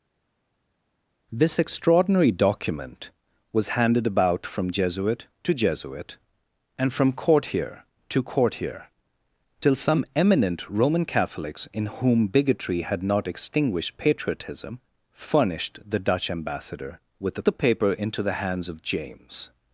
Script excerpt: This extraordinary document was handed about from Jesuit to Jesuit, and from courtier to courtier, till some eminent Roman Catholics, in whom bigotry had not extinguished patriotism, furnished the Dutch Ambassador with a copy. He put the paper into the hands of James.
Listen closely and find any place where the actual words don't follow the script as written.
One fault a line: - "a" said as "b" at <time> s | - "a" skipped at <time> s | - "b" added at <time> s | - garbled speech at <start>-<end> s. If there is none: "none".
- "copy He put" skipped at 17.4 s